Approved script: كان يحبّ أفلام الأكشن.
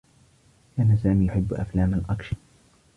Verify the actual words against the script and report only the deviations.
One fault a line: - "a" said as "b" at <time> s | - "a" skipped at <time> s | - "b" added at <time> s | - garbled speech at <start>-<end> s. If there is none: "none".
- "سامي" added at 1.0 s